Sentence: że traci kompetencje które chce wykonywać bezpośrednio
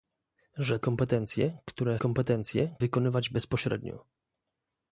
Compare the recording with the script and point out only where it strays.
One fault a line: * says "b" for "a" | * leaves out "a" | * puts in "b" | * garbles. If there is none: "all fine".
* leaves out "traci"
* says "kompetencje" for "chce"